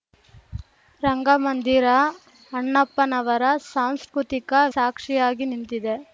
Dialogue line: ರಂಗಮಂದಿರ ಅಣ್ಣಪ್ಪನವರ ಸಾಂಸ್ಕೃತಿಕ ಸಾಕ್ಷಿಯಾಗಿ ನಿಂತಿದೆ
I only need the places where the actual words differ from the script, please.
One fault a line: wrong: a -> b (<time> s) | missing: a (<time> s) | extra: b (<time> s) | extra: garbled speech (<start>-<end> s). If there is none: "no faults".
no faults